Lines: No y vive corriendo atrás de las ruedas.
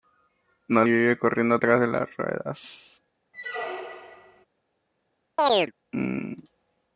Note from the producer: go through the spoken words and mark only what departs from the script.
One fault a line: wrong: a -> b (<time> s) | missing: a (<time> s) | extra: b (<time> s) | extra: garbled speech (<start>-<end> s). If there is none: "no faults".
no faults